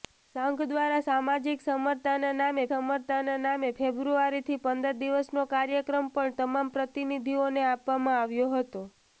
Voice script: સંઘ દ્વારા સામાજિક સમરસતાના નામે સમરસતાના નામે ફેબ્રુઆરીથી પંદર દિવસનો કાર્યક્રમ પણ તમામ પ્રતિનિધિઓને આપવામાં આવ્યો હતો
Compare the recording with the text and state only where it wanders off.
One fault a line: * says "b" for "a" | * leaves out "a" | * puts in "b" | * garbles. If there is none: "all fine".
all fine